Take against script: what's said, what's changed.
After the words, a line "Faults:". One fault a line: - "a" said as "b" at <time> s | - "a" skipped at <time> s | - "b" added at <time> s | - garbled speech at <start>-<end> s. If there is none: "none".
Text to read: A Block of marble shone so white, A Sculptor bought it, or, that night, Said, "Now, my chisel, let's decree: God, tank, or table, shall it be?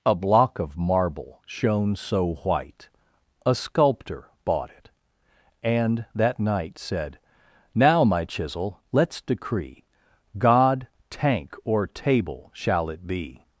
A Block of marble shone so white, A Sculptor bought it, and, that night, Said, "Now, my chisel, let's decree: God, tank, or table, shall it be?
Faults:
- "or" said as "and" at 5.6 s